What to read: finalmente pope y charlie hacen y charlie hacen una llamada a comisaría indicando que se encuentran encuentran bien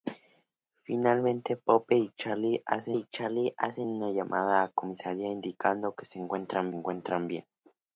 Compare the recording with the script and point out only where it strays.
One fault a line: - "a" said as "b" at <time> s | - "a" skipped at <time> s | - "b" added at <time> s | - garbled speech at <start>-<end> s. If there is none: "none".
none